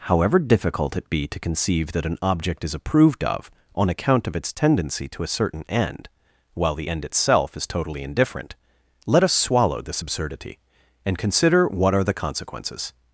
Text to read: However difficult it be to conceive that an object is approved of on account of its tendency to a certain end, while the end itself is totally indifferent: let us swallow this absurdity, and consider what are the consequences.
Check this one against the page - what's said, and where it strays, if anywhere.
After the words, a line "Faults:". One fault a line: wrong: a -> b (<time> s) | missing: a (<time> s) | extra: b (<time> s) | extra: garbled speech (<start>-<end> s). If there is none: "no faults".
However difficult it be to conceive that an object is approved of on account of its tendency to a certain end, while the end itself is totally indifferent: let us swallow this absurdity, and consider what are the consequences.
Faults:
no faults